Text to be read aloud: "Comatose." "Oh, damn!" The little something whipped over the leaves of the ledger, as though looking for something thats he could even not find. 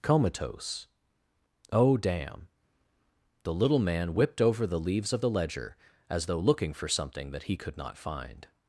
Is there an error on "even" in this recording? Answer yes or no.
yes